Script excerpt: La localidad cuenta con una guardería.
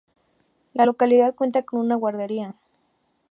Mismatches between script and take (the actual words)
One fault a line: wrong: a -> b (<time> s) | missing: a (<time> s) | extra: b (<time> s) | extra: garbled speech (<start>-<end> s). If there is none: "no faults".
no faults